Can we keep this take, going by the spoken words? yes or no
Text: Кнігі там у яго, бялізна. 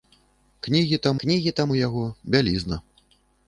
no